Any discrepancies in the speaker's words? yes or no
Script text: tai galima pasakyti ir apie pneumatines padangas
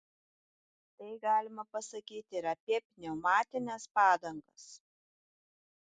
no